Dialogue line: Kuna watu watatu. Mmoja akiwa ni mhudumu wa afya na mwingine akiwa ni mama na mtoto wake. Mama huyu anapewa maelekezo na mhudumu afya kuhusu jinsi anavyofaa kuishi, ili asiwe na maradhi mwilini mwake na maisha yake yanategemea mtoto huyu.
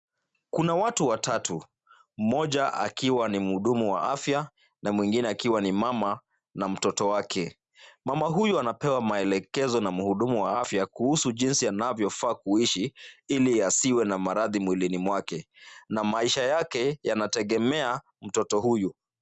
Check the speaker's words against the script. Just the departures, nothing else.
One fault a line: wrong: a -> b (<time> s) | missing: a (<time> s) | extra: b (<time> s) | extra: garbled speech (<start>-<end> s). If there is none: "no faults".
extra: wa (10.4 s)